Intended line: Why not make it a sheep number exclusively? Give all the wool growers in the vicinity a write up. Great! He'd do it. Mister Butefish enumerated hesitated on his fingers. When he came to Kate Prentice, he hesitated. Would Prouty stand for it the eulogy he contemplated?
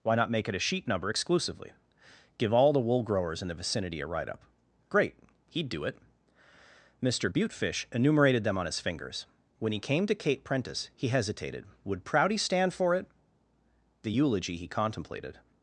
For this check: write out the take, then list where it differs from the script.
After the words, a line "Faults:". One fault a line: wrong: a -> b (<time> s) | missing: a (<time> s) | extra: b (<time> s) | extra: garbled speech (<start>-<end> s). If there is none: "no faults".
Why not make it a sheep number exclusively? Give all the wool growers in the vicinity a write up. Great! He'd do it. Mister Butefish enumerated them on his fingers. When he came to Kate Prentice, he hesitated. Would Prouty stand for it the eulogy he contemplated?
Faults:
wrong: hesitated -> them (8.4 s)